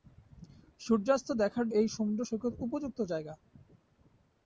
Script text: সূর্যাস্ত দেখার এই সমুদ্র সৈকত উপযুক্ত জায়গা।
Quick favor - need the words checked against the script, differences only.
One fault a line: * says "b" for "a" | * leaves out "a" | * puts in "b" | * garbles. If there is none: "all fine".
all fine